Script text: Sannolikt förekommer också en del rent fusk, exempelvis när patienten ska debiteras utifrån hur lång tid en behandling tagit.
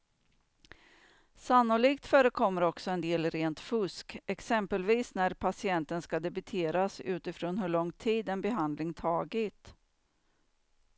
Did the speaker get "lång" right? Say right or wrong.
right